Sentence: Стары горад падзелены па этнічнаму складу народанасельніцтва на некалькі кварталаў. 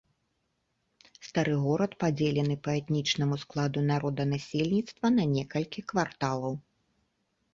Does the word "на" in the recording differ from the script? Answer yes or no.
no